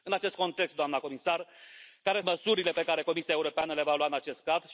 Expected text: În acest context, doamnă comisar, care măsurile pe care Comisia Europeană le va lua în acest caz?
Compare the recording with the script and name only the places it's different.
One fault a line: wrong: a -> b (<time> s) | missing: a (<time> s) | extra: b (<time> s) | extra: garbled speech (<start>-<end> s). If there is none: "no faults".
no faults